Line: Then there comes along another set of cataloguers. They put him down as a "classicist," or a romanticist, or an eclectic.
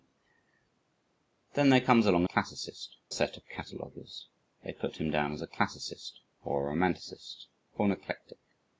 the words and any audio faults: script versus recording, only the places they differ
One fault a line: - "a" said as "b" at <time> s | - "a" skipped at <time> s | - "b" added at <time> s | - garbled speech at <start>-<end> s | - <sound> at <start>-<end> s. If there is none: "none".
- "another" said as "classicist" at 2.2 s